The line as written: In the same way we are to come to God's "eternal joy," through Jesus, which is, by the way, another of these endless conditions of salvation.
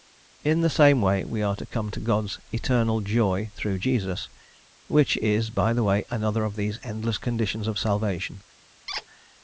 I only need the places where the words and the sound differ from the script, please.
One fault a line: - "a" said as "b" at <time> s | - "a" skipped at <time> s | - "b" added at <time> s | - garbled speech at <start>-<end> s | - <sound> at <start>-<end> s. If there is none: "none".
- squeak at 8.9-9.0 s